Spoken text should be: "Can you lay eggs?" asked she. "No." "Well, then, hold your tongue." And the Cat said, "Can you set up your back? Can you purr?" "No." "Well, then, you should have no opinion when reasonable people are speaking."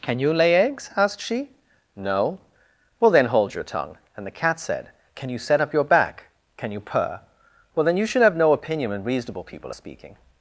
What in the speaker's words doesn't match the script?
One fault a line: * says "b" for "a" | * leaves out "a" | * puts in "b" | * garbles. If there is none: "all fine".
* leaves out "No"